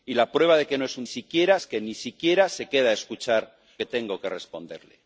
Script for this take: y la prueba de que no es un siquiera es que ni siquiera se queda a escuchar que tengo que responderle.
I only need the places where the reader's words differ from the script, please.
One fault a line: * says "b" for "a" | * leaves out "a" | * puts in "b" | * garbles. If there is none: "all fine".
all fine